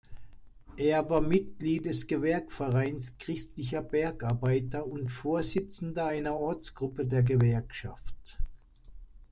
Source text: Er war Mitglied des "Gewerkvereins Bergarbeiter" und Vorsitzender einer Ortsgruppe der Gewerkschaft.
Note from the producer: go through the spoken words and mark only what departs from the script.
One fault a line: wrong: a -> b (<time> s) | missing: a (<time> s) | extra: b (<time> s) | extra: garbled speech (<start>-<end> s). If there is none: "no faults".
extra: christlicher (3.2 s)